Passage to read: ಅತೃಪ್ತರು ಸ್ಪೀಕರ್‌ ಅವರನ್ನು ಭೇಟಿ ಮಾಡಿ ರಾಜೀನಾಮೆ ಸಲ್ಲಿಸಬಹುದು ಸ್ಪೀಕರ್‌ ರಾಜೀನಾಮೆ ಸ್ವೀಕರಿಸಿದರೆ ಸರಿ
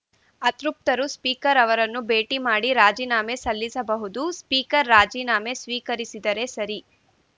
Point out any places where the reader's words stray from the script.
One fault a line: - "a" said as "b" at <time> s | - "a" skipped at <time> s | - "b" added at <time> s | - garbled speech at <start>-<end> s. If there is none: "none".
none